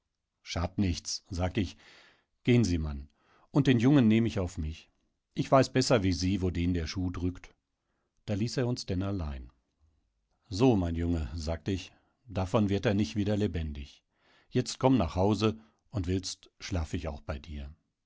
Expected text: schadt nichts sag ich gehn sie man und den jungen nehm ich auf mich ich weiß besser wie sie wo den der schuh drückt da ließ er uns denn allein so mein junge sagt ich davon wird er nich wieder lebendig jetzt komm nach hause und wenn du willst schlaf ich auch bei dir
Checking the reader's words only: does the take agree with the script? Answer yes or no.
no